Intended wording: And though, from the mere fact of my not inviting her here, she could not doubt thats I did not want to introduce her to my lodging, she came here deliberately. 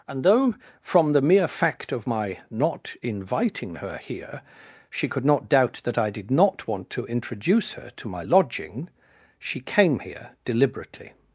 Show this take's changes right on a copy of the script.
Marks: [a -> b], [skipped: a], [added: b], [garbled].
And though, from the mere fact of my not inviting her here, she could not doubt [thats -> that] I did not want to introduce her to my lodging, she came here deliberately.